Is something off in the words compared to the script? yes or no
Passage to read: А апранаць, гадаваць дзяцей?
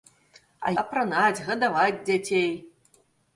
no